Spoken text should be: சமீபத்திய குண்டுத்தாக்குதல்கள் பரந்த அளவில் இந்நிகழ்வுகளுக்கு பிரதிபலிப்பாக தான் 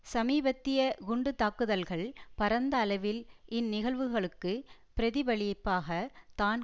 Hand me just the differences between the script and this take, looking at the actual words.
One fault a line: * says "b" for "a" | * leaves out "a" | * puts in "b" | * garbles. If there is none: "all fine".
all fine